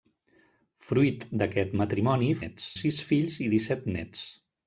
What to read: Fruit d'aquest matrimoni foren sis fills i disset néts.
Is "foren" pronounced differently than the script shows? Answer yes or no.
yes